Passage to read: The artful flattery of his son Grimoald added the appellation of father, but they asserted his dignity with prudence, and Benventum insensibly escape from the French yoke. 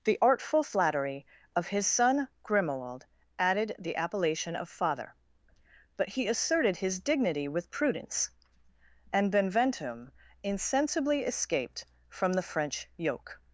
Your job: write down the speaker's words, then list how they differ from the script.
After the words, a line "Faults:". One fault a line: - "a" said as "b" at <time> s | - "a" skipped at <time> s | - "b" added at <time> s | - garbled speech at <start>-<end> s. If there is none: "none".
The artful flattery of his son Grimoald added the appellation of father, but he asserted his dignity with prudence, and Benventum insensibly escaped from the French yoke.
Faults:
- "they" said as "he" at 6.1 s
- "escape" said as "escaped" at 11.2 s